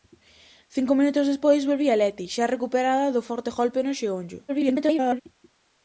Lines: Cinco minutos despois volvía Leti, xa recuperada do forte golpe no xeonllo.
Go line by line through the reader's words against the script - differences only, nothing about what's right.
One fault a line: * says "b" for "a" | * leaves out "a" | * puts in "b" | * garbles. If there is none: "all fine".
* garbles